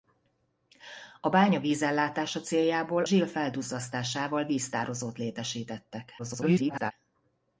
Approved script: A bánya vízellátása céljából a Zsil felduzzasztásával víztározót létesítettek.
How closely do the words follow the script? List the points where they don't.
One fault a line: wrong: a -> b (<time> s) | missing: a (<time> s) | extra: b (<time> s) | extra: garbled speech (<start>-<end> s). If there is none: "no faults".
missing: a (3.0 s)
extra: garbled speech (6.2-6.9 s)